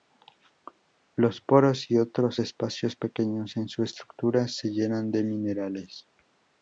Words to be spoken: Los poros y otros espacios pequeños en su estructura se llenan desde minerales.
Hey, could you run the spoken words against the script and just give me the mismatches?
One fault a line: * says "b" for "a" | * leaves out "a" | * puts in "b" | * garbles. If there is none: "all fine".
* says "de" for "desde"